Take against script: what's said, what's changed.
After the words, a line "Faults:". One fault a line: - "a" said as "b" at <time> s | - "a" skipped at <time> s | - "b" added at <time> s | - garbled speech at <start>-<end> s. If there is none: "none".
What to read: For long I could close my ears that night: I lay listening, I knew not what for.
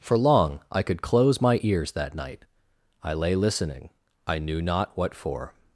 For long I could close my ears that night: I lay listening, I knew not what for.
Faults:
none